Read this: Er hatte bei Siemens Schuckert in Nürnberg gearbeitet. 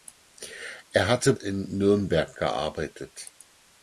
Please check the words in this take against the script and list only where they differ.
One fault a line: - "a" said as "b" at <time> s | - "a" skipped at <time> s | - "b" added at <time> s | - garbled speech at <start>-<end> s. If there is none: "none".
- "bei Siemens Schuckert" skipped at 1.4 s